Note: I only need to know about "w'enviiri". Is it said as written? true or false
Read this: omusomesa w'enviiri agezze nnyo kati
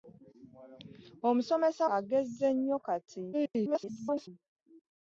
false